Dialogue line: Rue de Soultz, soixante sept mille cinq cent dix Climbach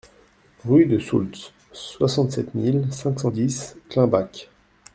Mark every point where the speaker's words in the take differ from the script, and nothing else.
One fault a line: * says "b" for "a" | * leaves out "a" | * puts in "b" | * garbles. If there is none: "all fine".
all fine